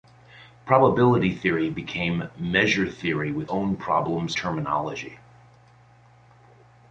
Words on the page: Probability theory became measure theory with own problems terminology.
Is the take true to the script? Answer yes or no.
yes